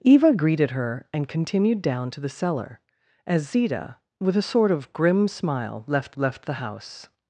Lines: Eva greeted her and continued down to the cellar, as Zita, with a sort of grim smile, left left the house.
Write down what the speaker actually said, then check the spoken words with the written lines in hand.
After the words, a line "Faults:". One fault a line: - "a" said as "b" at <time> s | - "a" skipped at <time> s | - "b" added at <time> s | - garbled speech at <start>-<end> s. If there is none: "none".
Eva greeted her and continued down to the cellar, as Zita, with a sort of grim smile, left left the house.
Faults:
none